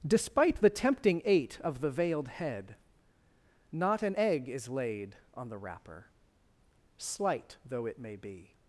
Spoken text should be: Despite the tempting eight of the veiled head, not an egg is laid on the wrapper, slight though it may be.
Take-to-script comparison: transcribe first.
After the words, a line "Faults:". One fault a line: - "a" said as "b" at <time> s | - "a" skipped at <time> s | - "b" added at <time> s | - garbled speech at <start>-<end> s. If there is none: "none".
Despite the tempting eight of the veiled head, not an egg is laid on the wrapper, slight though it may be.
Faults:
none